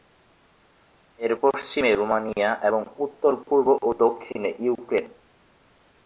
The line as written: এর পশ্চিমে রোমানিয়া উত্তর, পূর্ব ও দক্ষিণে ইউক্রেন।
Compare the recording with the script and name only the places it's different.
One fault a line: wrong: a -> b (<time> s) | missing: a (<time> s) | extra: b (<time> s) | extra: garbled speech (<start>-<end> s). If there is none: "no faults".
extra: এবং (2.6 s)